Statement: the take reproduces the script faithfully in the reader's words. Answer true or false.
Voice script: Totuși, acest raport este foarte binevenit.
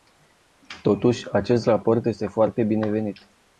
true